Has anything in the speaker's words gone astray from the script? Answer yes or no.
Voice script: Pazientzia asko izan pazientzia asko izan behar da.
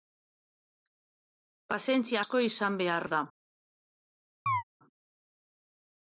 yes